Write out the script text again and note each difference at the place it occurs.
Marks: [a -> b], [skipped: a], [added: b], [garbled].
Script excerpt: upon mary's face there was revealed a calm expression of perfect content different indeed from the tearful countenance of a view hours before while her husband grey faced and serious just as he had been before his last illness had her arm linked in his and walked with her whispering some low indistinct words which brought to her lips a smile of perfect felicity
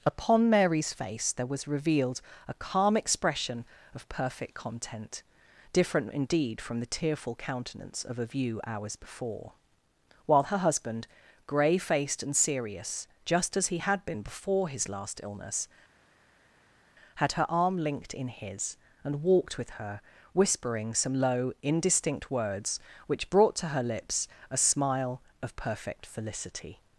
upon mary's face there was revealed a calm expression of perfect content different indeed from the tearful countenance of a view hours before while her husband grey faced and serious just as he had been before his last illness had her arm linked in his and walked with her whispering some low indistinct words which brought to her lips a smile of perfect felicity